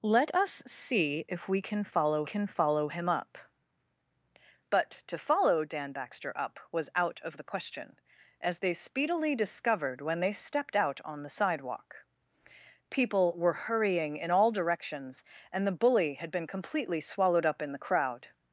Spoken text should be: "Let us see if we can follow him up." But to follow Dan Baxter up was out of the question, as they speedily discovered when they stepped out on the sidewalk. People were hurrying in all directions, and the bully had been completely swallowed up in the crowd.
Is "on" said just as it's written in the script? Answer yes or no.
yes